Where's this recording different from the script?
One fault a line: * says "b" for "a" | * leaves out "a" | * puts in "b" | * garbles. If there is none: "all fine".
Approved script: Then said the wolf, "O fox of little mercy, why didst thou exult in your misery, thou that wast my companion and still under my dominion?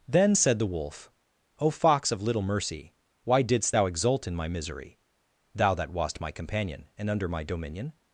* says "my" for "your"
* leaves out "still"